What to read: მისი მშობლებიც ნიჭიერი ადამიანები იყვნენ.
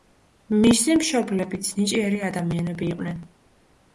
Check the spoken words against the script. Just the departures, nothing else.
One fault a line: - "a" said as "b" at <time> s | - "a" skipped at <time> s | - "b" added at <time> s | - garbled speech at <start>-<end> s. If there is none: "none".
none